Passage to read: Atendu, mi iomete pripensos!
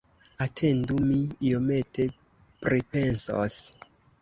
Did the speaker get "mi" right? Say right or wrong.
right